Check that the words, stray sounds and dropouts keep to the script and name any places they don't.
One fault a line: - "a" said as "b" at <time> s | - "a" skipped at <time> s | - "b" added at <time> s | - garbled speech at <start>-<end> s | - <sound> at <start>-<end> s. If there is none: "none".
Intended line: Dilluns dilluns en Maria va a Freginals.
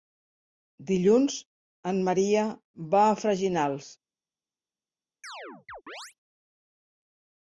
- "dilluns" skipped at 1.4 s
- chirp at 5.2-6.1 s